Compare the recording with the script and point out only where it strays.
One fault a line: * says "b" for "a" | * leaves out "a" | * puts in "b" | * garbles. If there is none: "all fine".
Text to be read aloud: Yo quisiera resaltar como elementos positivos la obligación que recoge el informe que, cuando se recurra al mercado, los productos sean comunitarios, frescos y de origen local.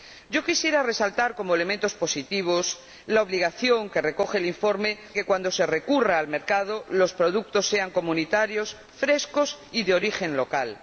all fine